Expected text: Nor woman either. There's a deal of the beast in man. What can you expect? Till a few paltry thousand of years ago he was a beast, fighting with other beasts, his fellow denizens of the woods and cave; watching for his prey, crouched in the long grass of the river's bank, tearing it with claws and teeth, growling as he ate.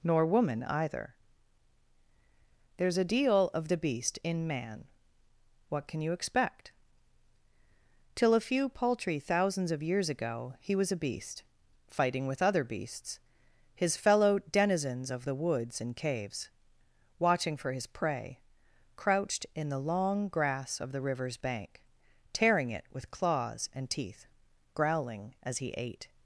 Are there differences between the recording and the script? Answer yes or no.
yes